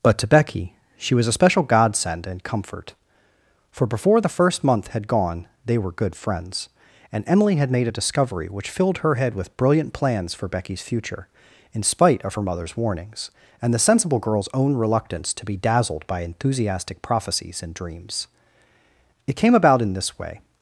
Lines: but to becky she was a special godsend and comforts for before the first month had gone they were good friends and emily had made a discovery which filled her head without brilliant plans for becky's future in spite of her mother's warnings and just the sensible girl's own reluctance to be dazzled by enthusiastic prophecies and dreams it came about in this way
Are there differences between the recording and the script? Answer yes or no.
yes